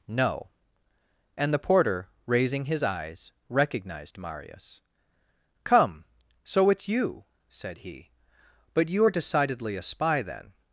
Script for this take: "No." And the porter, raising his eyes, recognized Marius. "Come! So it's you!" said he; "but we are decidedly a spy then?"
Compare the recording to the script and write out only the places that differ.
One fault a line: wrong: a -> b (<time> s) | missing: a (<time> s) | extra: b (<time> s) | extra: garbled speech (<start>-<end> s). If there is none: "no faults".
wrong: we -> you (8.9 s)